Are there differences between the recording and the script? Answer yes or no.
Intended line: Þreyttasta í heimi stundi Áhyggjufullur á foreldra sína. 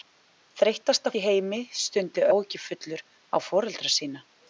no